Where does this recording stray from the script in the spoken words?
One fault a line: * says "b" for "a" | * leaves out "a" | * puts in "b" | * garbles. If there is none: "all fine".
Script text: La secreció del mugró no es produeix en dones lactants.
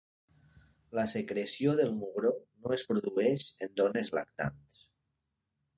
all fine